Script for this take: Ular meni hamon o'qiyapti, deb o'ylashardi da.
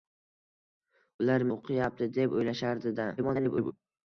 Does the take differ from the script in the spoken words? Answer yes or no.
yes